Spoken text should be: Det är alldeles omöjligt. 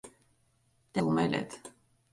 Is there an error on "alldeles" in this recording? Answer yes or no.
yes